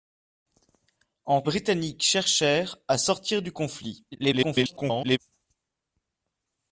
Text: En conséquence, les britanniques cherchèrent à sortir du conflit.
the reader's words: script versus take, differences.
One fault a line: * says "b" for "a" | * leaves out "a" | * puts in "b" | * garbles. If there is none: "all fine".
* leaves out "conséquence les"
* garbles